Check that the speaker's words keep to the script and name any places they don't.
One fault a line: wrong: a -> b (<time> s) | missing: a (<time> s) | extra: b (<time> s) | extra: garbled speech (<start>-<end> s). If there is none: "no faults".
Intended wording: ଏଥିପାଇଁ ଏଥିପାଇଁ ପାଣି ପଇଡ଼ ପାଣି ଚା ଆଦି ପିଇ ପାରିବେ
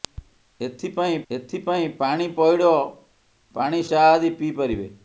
no faults